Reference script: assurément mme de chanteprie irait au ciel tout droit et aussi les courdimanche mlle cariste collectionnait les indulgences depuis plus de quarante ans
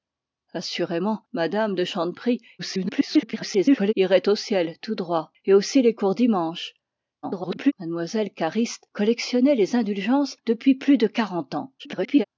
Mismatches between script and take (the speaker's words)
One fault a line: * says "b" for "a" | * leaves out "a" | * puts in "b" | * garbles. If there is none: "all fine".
* garbles
* garbles
* garbles